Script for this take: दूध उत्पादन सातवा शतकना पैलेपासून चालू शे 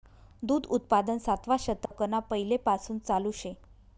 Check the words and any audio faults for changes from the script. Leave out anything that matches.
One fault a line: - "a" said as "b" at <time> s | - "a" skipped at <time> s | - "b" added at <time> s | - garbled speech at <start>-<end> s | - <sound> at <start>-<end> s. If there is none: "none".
- dropout at 1.9-1.9 s